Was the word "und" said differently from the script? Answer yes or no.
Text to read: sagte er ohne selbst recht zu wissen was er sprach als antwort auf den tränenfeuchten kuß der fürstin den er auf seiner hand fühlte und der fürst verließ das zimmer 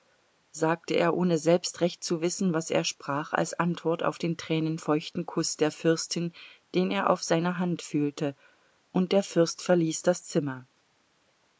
no